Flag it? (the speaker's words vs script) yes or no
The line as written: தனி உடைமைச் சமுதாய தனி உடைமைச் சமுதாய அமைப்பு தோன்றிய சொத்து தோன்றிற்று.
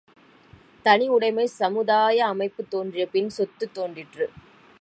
yes